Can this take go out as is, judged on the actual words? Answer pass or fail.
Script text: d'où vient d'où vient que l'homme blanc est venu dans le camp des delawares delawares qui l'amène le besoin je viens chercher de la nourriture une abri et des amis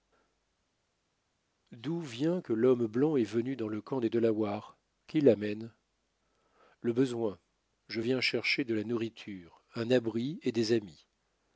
fail